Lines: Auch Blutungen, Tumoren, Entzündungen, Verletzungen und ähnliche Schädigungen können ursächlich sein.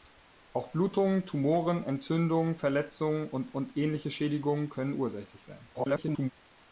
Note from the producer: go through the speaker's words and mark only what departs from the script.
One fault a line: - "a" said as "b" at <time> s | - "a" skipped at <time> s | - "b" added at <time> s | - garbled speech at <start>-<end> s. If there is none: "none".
- "und" added at 3.5 s
- garbled speech at 5.7-6.3 s